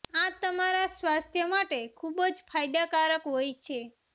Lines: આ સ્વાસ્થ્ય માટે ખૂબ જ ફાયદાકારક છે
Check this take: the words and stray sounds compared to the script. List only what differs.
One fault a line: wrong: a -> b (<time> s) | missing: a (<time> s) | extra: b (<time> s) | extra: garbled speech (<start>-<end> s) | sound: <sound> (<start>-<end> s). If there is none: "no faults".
extra: તમારા (0.4 s)
extra: હોય (3.3 s)